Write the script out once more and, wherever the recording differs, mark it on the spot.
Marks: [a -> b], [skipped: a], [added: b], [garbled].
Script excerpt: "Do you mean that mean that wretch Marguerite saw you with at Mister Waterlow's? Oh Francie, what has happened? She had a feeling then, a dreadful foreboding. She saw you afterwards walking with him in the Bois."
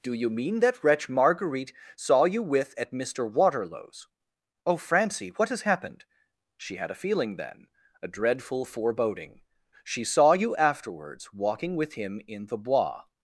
"Do you mean that [skipped: mean that] wretch Marguerite saw you with at Mister Waterlow's? Oh Francie, what has happened? She had a feeling then, a dreadful foreboding. She saw you afterwards walking with him in the Bois."